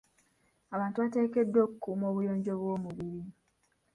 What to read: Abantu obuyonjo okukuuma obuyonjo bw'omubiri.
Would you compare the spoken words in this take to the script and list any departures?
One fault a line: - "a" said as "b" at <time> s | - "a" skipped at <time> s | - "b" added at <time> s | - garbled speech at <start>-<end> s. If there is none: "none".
- "obuyonjo" said as "bateekeddwa" at 1.0 s